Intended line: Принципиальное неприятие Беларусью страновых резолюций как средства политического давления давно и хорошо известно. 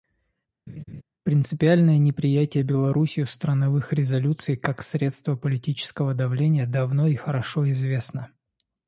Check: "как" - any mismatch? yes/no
no